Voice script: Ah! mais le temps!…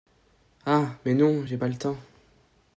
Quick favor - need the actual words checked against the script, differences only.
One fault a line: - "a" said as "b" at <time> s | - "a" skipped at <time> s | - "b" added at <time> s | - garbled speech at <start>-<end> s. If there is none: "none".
- "non j'ai pas" added at 1.1 s